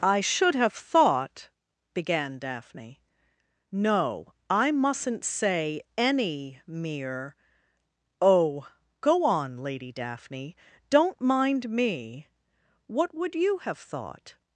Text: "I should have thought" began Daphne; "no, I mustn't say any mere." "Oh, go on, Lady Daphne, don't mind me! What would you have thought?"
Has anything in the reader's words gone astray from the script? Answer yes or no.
no